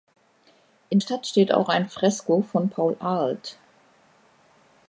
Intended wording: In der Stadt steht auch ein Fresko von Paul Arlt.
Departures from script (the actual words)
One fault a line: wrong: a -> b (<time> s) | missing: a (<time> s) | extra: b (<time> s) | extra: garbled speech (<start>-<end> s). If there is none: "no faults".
missing: der (1.0 s)